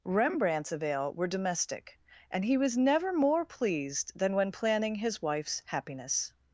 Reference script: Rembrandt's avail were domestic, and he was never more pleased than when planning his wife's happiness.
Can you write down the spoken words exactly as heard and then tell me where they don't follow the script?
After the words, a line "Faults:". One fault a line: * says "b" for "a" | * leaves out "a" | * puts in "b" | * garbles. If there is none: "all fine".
Rembrandt's avail were domestic, and he was never more pleased than when planning his wife's happiness.
Faults:
all fine